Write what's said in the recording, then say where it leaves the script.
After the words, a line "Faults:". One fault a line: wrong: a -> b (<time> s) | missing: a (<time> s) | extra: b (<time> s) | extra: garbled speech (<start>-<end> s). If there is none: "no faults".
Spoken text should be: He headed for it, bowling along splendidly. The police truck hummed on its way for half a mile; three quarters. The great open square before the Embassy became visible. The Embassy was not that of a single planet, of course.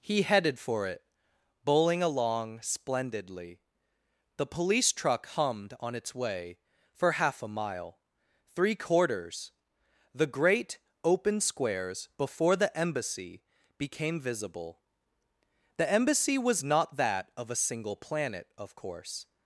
He headed for it, bowling along splendidly. The police truck hummed on its way for half a mile; three quarters. The great open squares before the Embassy became visible. The Embassy was not that of a single planet, of course.
Faults:
wrong: square -> squares (11.4 s)